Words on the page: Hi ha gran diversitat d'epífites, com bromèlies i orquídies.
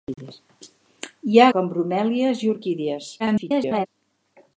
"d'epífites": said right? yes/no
no